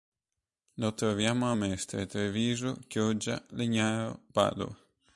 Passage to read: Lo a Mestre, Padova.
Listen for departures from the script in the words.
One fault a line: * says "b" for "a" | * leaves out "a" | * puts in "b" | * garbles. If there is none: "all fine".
* puts in "troviamo"
* puts in "Treviso Chioggia Legnaro"